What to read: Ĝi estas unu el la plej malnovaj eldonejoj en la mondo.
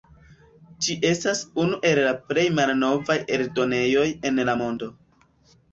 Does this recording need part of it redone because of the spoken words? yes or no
no